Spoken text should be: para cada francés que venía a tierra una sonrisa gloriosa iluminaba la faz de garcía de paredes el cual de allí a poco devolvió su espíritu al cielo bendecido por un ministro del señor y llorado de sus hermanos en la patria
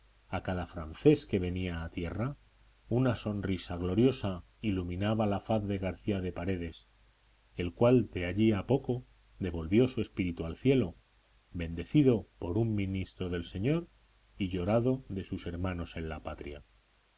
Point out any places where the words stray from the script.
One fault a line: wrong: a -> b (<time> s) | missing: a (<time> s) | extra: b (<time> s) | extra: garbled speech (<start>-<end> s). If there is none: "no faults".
wrong: para -> a (0.3 s)